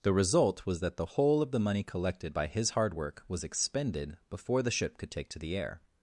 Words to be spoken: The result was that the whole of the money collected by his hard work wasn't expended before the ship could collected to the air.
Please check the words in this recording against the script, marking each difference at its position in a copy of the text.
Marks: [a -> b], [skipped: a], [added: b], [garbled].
The result was that the whole of the money collected by his hard work [wasn't -> was] expended before the ship could [collected -> take] to the air.